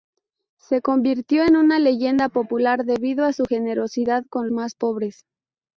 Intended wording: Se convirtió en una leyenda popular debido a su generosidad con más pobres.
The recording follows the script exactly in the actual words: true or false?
true